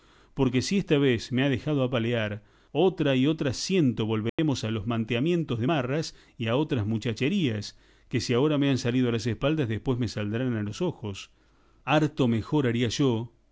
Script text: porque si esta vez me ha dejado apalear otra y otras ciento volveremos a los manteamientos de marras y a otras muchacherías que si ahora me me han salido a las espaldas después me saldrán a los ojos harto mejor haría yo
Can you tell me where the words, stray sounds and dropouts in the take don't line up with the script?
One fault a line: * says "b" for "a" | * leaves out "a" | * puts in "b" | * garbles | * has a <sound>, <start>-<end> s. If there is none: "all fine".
* has a dropout, 4.3-4.4 s
* leaves out "me"